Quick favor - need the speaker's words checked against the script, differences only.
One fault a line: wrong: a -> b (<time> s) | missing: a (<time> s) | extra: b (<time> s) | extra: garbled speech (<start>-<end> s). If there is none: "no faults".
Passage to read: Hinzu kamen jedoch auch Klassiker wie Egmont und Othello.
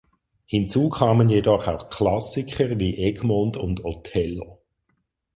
no faults